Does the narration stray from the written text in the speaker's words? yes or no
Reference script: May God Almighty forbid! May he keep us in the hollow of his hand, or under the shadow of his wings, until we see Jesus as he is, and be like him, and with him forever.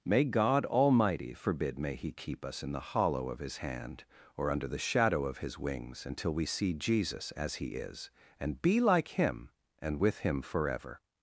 no